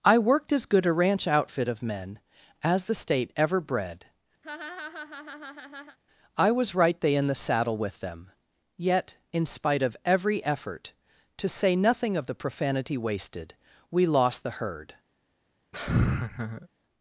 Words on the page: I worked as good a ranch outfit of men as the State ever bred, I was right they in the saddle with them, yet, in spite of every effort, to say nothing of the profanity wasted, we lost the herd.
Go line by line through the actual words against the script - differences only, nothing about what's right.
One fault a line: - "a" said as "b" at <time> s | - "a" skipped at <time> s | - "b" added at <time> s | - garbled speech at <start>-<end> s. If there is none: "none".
none